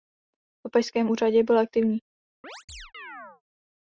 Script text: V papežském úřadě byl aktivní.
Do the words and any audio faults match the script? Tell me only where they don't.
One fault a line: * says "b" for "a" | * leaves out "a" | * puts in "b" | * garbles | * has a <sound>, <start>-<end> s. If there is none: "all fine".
* has a chirp, 2.4-3.4 s